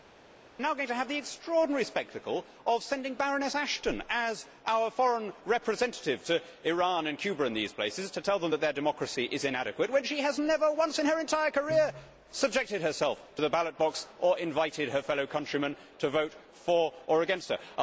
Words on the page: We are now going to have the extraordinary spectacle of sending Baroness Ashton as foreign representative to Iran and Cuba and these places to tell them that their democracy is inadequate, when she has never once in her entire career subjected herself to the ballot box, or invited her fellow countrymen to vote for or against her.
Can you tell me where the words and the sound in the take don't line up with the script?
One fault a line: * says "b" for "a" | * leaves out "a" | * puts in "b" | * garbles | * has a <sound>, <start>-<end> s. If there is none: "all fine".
* puts in "our"